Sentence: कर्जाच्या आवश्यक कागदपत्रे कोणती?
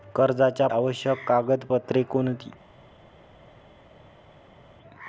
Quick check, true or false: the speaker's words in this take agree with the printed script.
true